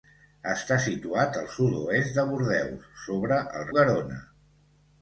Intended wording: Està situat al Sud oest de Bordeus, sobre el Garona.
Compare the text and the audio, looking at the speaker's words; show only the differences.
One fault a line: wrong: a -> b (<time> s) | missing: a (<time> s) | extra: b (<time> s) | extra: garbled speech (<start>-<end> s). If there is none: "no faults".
no faults